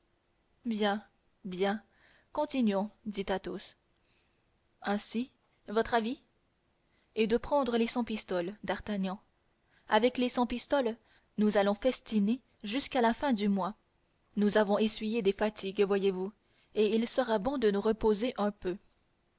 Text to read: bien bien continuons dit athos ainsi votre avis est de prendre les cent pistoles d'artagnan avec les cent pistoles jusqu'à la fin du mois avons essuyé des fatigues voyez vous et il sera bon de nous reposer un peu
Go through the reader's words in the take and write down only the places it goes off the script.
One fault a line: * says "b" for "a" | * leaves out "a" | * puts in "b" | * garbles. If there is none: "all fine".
* puts in "nous allons festiner"
* puts in "nous"